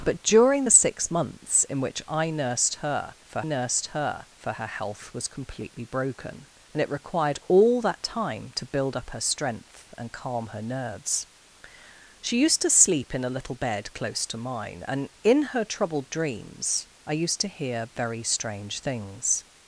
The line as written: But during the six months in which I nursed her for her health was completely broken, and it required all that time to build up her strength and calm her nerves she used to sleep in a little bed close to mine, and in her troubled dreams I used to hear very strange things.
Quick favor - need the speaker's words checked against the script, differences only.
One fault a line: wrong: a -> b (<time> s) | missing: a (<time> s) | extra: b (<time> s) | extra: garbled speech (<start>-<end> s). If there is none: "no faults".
extra: nursed her for (3.4 s)